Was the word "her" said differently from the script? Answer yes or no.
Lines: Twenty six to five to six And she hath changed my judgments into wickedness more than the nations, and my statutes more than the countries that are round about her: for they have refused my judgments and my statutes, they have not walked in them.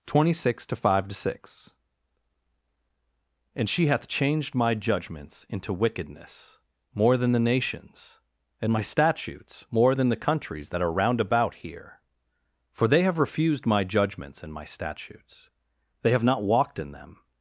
yes